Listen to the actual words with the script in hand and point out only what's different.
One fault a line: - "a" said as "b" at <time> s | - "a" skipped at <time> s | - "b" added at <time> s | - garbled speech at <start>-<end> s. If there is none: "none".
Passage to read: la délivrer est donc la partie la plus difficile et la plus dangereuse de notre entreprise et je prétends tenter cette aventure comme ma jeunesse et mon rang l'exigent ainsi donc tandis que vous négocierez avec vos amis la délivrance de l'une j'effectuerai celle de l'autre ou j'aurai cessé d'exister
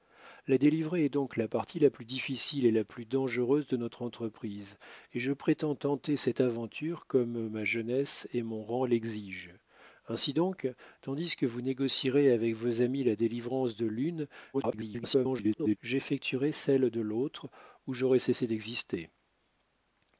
- garbled speech at 14.5-15.8 s